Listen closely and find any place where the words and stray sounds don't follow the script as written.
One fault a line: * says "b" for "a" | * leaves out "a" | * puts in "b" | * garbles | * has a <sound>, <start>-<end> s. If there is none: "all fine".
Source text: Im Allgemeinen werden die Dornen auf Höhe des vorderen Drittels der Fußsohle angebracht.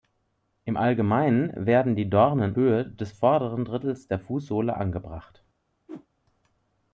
* leaves out "auf"
* has a whoosh, 5.9-6.1 s